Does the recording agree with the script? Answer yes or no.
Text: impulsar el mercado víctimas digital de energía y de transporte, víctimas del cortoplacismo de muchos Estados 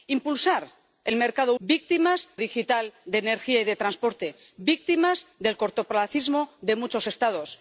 yes